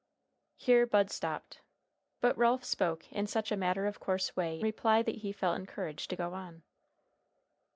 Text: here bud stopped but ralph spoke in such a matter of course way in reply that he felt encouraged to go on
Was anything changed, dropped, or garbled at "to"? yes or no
no